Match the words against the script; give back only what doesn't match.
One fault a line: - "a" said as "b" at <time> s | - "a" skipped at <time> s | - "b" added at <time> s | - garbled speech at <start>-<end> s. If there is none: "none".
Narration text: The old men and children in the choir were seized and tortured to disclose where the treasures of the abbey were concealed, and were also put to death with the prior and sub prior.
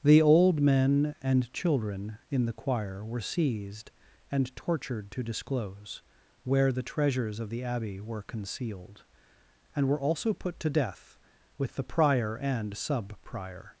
none